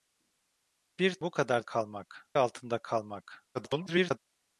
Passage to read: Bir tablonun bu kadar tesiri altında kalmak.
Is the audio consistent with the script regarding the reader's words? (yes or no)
no